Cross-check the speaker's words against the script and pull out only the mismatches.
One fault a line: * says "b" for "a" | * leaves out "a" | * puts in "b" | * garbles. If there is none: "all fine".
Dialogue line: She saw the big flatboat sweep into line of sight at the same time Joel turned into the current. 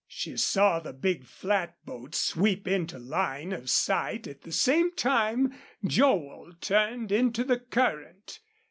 all fine